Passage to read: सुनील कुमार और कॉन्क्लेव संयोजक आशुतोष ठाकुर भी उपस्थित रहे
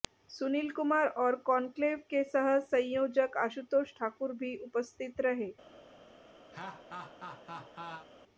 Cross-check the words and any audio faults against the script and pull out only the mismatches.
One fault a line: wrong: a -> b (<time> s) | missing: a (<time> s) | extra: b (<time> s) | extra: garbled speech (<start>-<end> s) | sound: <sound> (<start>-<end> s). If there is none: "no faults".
extra: के सह (2.1 s)
sound: laugh (6.5-8.1 s)